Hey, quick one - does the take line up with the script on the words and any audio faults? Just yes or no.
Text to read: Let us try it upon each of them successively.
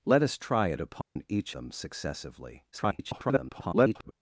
no